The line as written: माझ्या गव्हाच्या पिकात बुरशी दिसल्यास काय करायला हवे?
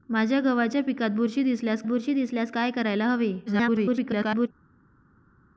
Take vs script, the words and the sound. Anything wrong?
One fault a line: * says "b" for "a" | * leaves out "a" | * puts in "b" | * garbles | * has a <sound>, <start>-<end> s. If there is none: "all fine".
* puts in "बुरशी दिसल्यास"
* garbles